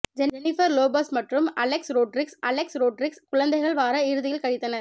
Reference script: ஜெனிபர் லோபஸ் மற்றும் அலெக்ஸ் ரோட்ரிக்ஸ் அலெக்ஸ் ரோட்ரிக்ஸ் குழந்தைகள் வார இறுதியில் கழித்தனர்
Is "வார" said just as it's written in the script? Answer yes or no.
yes